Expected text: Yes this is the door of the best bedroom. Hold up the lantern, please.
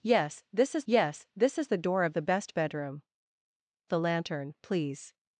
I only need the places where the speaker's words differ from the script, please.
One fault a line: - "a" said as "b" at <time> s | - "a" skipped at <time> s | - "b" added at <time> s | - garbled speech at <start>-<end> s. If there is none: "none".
- "yes this is" added at 0.8 s
- "Hold up" skipped at 3.0 s